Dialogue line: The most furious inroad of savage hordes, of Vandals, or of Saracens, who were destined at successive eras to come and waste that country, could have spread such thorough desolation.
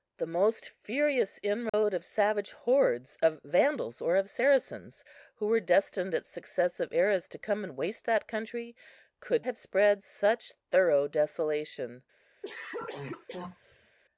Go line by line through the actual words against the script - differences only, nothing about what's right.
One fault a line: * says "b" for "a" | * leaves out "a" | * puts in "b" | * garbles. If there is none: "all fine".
all fine